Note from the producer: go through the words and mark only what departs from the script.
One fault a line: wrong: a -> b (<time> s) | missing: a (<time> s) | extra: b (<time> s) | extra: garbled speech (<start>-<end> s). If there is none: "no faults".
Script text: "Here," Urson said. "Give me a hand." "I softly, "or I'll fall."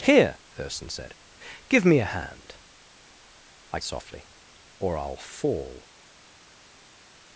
no faults